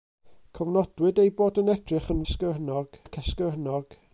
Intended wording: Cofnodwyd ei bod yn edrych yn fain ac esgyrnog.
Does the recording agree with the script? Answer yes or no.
no